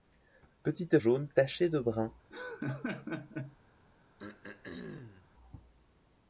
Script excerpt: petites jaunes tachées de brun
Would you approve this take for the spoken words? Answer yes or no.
yes